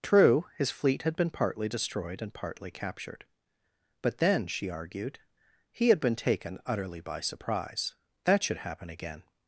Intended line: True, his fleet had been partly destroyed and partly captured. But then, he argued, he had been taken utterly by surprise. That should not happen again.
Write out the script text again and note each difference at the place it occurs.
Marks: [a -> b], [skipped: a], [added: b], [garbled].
True, his fleet had been partly destroyed and partly captured. But then, [he -> she] argued, he had been taken utterly by surprise. That should [skipped: not] happen again.